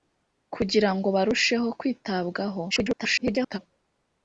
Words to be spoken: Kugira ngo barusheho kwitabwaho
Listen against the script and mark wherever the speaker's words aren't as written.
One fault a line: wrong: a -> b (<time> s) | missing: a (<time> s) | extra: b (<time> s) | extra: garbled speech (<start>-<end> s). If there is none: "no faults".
extra: garbled speech (2.7-3.6 s)